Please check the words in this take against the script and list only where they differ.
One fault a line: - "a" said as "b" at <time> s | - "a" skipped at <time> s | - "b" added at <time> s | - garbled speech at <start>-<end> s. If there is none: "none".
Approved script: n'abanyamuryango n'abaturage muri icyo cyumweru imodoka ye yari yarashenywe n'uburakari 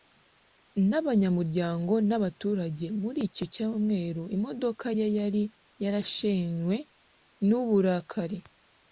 none